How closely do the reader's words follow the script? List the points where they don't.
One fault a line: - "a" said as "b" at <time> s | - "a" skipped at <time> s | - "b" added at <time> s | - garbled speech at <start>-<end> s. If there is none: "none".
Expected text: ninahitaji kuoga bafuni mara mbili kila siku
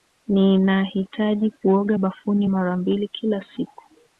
none